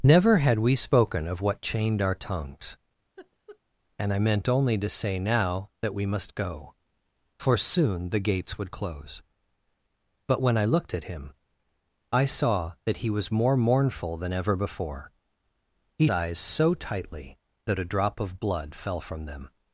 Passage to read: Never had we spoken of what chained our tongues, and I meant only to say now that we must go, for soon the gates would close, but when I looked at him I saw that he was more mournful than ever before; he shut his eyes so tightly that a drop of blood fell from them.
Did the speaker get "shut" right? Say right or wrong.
wrong